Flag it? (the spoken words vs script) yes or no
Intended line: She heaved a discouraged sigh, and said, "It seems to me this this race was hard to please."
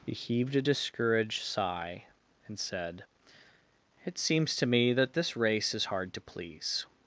yes